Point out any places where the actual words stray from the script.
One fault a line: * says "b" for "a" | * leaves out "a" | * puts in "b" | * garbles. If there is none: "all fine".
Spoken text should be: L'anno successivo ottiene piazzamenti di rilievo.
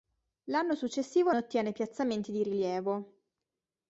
all fine